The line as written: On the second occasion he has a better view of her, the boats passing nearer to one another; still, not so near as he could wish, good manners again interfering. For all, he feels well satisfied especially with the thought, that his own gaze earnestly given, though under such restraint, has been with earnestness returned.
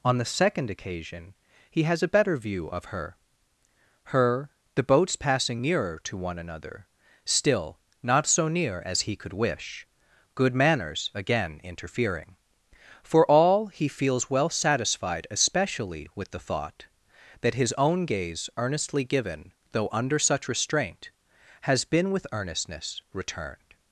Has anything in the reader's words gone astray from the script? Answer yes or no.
yes